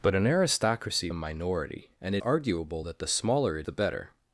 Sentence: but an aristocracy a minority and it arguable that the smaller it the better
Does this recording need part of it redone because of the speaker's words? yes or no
no